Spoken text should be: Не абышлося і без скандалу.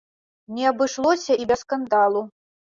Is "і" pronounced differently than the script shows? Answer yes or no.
no